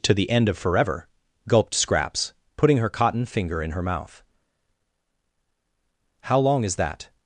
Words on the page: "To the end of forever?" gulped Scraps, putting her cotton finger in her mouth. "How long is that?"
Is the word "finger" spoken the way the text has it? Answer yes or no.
yes